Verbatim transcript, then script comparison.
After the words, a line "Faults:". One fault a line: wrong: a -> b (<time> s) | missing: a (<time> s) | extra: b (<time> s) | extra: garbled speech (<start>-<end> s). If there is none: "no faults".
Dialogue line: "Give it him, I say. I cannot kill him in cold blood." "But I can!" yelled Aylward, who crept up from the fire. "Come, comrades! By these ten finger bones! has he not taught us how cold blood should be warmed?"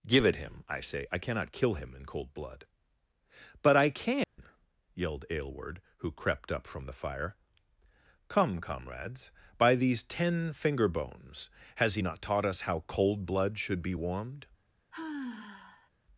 "Give it him, I say. I cannot kill him in cold blood." "But I can!" yelled Aylward, who crept up from the fire. "Come, comrades! By these ten finger bones! has he not taught us how cold blood should be warmed?"
Faults:
no faults